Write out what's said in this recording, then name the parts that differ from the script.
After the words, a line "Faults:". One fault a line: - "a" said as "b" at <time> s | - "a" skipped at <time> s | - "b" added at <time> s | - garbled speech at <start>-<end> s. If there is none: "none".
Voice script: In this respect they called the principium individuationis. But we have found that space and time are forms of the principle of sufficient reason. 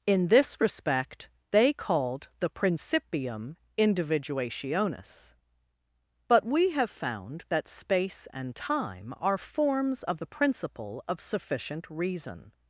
In this respect they called the principium individuationis. But we have found that space and time are forms of the principle of sufficient reason.
Faults:
none